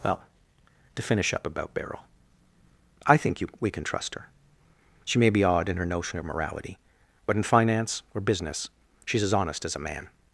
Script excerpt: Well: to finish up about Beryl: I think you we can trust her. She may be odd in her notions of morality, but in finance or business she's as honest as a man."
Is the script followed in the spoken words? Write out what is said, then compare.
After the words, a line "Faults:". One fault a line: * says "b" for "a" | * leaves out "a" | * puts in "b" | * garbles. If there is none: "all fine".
Well: to finish up about Beryl: I think you we can trust her. She may be odd in her notion of morality, but in finance or business she's as honest as a man."
Faults:
* says "notion" for "notions"